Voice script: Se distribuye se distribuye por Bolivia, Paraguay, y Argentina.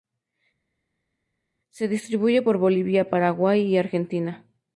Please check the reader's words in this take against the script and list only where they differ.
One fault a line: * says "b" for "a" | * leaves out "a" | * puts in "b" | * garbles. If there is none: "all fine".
* leaves out "se distribuye"